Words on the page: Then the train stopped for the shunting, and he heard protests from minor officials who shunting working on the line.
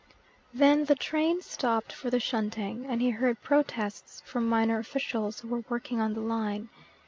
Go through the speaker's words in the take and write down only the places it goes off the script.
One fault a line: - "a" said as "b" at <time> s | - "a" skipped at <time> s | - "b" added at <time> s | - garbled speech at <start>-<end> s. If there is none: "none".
- "shunting" said as "were" at 5.5 s